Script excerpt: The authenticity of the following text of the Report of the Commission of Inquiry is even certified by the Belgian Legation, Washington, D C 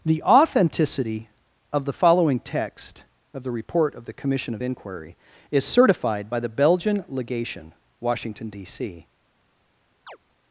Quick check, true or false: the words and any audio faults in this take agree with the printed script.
false